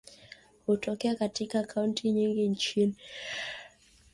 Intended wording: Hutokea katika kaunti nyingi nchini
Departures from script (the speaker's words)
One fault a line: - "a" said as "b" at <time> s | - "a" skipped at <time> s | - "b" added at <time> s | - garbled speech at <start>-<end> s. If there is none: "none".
none